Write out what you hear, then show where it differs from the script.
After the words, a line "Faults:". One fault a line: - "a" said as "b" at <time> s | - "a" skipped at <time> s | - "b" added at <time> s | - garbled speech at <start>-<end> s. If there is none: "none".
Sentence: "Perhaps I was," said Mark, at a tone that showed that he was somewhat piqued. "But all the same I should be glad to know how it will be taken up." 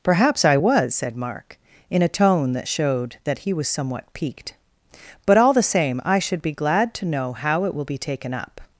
"Perhaps I was," said Mark, in a tone that showed that he was somewhat piqued. "But all the same I should be glad to know how it will be taken up."
Faults:
- "at" said as "in" at 1.9 s